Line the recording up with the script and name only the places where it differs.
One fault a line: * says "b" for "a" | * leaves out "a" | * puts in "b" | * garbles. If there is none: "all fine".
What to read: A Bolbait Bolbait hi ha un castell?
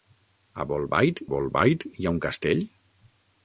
all fine